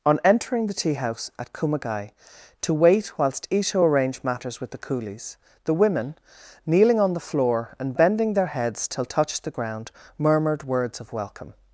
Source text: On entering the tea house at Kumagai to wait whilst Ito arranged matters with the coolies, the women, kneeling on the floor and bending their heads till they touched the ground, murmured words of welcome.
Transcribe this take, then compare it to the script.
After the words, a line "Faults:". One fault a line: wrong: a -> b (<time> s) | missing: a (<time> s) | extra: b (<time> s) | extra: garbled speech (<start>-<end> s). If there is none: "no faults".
On entering the tea house at Kumagai to wait whilst Ito arranged matters with the coolies, the women, kneeling on the floor and bending their heads till touched the ground, murmured words of welcome.
Faults:
missing: they (9.0 s)